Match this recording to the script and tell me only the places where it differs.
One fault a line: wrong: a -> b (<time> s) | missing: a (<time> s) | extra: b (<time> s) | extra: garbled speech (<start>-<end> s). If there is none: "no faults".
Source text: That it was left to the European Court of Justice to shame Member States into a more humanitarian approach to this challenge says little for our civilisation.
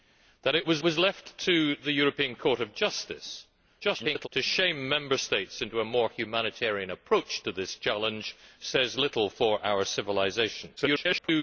extra: was (0.8 s)
extra: garbled speech (3.8-4.3 s)
extra: garbled speech (10.8-11.4 s)